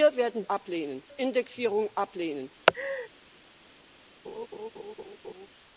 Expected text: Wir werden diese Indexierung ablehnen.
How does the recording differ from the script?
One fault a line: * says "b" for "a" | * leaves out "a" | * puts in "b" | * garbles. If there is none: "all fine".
* says "ablehnen" for "diese"